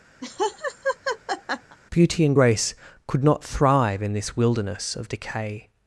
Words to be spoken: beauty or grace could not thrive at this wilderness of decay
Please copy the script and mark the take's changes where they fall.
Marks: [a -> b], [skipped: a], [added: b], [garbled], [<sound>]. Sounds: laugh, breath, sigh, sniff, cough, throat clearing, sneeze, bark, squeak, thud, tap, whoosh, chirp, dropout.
[laugh] beauty [or -> and] grace could not thrive [at -> in] this wilderness of decay